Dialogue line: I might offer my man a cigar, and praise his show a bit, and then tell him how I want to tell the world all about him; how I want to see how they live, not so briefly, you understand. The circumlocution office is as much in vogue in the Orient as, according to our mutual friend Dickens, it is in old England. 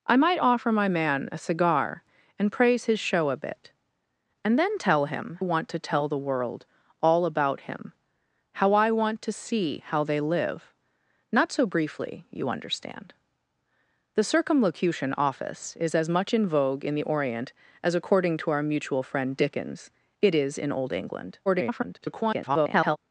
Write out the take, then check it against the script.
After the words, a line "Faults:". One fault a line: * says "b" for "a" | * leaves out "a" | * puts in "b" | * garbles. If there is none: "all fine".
I might offer my man a cigar, and praise his show a bit, and then tell him want to tell the world all about him; how I want to see how they live, not so briefly, you understand. The circumlocution office is as much in vogue in the Orient as, according to our mutual friend Dickens, it is in old England. [garbled]
Faults:
* leaves out "how I"
* garbles